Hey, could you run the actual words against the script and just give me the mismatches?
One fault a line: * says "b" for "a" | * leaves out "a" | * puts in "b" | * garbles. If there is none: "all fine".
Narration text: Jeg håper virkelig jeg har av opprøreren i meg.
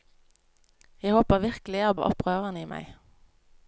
all fine